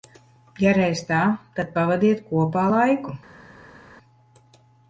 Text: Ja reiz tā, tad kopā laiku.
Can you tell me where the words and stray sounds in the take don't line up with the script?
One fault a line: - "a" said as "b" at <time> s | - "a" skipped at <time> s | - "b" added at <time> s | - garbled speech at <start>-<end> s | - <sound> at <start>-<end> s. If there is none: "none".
- "pavadiet" added at 1.8 s